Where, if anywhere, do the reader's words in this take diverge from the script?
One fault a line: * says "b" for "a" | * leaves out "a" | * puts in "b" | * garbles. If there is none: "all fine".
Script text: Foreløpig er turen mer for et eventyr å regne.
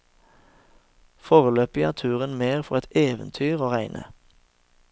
all fine